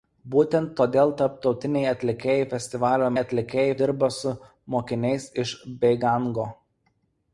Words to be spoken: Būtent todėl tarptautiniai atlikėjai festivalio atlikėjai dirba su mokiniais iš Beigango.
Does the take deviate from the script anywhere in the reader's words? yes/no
no